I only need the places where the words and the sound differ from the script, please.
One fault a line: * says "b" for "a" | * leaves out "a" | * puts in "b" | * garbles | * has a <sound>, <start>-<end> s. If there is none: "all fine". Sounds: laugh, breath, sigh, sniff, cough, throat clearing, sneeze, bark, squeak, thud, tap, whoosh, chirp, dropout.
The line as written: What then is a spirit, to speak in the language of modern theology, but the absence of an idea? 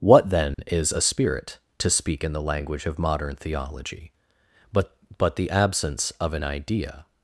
* has a dropout, 0.5-0.6 s
* puts in "but"